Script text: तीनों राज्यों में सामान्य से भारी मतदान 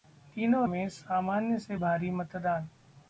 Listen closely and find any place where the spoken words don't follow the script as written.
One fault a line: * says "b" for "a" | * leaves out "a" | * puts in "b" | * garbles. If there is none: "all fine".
* leaves out "राज्यों"